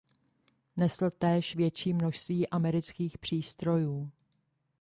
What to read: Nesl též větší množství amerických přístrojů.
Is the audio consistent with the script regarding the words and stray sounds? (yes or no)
yes